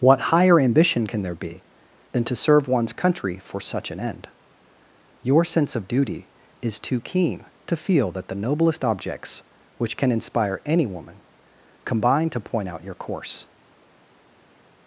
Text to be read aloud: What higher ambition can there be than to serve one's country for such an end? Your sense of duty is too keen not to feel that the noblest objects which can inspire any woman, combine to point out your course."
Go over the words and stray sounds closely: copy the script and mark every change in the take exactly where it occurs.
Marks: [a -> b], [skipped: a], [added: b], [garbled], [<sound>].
What higher ambition can there be than to serve one's country for such an end? Your sense of duty is too keen [skipped: not] to feel that the noblest objects which can inspire any woman, combine to point out your course."